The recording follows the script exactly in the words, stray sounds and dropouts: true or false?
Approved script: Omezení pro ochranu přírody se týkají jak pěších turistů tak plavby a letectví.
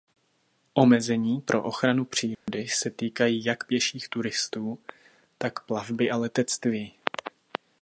false